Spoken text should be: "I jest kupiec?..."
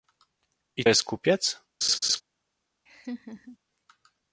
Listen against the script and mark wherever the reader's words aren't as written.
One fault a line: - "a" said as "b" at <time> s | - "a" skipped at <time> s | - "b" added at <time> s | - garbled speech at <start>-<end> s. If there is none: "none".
none